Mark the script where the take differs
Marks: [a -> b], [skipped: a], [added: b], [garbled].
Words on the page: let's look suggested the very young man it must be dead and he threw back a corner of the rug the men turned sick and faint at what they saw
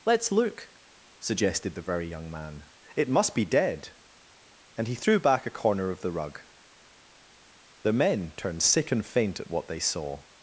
let's look suggested the very young man it must be dead and he threw back a corner of the rug the men turned sick and faint at what they saw